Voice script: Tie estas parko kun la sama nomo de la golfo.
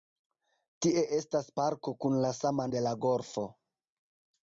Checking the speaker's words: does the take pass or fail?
fail